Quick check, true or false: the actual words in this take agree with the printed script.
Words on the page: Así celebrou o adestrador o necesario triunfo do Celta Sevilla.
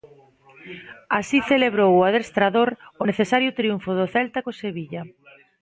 false